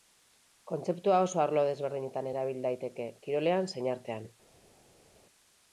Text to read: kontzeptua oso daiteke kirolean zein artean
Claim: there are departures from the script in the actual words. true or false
true